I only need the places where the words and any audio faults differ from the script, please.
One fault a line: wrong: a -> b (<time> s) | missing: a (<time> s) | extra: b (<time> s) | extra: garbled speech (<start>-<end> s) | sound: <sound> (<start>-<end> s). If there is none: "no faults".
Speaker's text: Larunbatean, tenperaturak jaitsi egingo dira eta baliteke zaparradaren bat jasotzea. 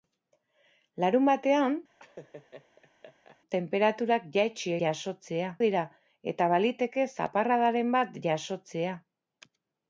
sound: laugh (2.0-3.4 s)
wrong: egingo -> jasotzea (4.9 s)